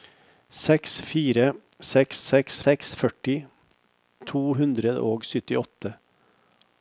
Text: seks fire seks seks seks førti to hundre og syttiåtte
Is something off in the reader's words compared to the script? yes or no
no